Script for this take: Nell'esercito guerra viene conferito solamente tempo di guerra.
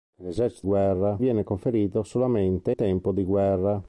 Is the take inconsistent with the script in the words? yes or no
no